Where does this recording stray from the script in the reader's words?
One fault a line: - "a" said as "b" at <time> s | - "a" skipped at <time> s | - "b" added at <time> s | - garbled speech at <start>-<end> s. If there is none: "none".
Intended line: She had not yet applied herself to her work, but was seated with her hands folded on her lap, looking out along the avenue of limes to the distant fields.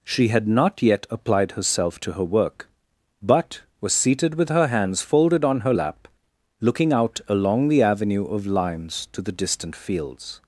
none